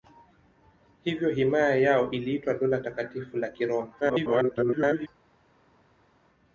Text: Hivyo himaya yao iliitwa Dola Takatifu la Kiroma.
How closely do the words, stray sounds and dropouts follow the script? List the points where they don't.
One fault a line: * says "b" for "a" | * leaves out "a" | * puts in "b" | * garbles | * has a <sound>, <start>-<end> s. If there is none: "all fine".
* garbles